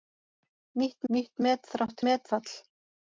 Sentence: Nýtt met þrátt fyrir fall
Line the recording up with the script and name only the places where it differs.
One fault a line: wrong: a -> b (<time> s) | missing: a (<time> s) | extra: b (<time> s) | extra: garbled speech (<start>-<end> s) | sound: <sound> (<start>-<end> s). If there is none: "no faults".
extra: nýtt (1.1 s)
wrong: fyrir -> met (2.1 s)